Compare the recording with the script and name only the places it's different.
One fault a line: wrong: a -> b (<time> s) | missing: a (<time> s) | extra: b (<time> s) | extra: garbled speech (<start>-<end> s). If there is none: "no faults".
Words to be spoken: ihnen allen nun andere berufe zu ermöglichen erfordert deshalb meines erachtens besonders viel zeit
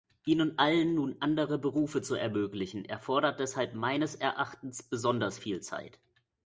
no faults